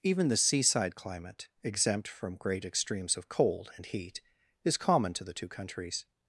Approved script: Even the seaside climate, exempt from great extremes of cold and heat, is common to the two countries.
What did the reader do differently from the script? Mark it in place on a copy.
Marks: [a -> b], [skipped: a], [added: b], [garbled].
Even the seaside climate, exempt from great extremes of cold and heat, is common to the two countries.